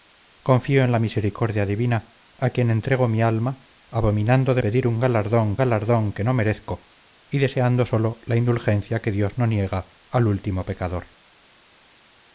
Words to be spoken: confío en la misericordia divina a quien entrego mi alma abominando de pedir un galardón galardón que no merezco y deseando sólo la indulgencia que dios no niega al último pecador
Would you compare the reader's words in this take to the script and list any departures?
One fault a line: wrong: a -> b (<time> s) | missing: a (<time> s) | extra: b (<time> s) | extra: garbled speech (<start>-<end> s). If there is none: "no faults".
no faults